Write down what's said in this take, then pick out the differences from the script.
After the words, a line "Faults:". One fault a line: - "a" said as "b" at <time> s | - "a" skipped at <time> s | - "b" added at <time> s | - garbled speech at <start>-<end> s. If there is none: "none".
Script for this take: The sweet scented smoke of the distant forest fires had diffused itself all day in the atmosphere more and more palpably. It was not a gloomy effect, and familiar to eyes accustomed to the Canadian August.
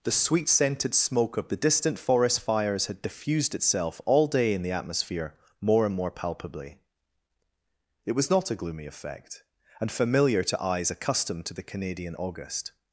The sweet scented smoke of the distant forest fires had diffused itself all day in the atmosphere more and more palpably. It was not a gloomy effect, and familiar to eyes accustomed to the Canadian August.
Faults:
none